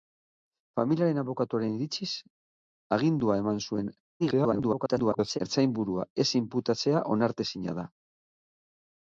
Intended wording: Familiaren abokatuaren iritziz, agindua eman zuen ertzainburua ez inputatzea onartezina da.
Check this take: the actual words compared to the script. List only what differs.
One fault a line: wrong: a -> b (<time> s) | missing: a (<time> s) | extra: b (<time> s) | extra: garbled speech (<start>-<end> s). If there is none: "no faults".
extra: garbled speech (4.2-5.4 s)